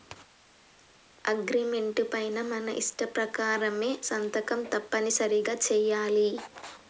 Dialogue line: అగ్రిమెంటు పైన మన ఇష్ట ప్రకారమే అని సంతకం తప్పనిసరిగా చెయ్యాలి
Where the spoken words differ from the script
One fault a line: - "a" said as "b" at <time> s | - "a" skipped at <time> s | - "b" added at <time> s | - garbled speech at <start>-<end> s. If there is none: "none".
- "అని" skipped at 3.9 s